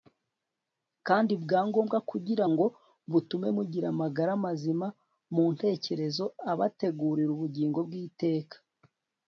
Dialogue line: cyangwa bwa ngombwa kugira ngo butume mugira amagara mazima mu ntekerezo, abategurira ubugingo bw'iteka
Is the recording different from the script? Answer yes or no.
yes